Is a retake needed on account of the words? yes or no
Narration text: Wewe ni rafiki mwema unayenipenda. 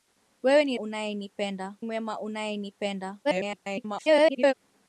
yes